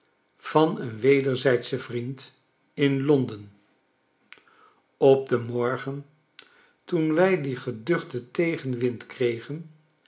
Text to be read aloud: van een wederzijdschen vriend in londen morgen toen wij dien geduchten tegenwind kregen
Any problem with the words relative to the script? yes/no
yes